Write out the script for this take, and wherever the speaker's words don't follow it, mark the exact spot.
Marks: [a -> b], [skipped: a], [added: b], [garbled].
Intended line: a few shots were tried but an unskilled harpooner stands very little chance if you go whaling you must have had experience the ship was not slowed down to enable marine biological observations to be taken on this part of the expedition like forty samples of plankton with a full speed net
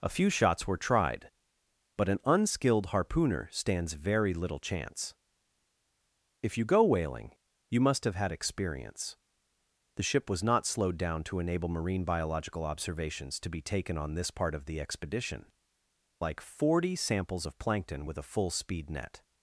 a few shots were tried but an unskilled harpooner stands very little chance if you go whaling you must have had experience the ship was not slowed down to enable marine biological observations to be taken on this part of the expedition like forty samples of plankton with a full speed net